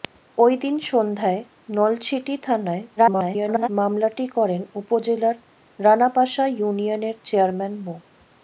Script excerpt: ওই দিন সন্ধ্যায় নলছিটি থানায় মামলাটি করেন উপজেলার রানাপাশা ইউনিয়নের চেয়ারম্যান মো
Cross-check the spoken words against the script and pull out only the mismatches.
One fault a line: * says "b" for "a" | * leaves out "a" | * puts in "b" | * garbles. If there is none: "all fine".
* garbles